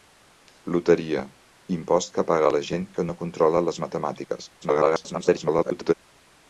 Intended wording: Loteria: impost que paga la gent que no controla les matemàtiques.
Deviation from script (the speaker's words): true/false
true